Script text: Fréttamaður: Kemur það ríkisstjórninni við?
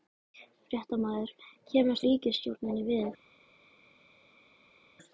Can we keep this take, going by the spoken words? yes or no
no